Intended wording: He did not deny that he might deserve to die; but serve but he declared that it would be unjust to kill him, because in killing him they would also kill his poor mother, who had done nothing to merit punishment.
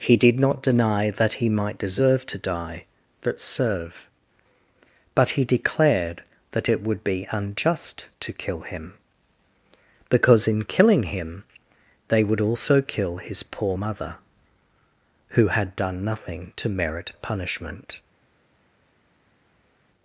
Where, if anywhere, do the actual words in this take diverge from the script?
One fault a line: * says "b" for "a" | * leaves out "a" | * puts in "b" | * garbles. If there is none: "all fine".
all fine